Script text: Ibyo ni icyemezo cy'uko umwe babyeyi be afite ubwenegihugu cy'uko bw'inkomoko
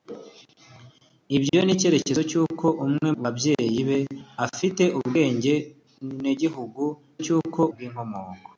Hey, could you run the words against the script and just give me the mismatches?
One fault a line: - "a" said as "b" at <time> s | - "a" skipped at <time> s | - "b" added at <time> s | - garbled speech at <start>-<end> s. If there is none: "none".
none